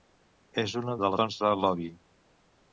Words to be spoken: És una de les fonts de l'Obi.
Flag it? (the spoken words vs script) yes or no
yes